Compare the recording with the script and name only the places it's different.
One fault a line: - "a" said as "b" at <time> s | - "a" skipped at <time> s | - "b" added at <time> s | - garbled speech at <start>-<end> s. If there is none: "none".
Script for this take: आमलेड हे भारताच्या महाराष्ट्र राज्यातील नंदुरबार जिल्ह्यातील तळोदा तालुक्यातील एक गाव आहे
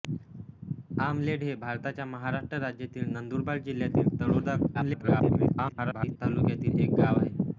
- garbled speech at 4.7-6.2 s